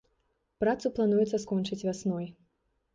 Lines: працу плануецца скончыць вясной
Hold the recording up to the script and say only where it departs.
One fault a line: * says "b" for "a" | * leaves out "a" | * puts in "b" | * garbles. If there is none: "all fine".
all fine